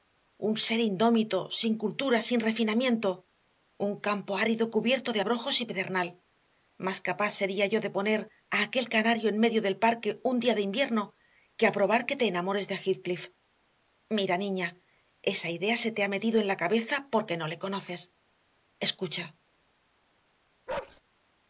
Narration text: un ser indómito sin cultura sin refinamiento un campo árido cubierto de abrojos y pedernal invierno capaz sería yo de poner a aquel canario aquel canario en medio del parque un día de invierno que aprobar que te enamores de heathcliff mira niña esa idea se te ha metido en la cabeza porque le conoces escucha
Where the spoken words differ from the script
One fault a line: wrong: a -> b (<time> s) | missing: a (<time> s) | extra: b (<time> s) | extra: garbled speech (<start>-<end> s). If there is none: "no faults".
wrong: invierno -> más (6.8 s)
missing: aquel canario (9.3 s)
extra: no (17.4 s)